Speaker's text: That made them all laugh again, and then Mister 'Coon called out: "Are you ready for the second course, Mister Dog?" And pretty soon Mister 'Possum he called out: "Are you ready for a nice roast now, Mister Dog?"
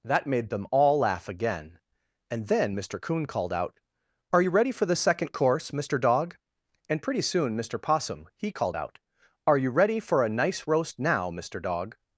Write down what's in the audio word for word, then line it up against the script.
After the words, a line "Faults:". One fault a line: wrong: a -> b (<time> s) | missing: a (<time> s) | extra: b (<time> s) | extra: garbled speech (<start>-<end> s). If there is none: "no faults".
That made them all laugh again, and then Mister 'Coon called out: "Are you ready for the second course, Mister Dog?" And pretty soon Mister 'Possum he called out: "Are you ready for a nice roast now, Mister Dog?"
Faults:
no faults